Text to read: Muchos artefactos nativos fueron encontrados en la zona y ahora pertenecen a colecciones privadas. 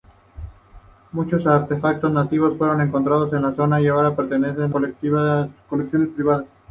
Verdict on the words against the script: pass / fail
fail